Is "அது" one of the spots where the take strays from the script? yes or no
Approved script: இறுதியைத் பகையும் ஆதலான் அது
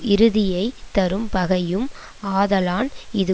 yes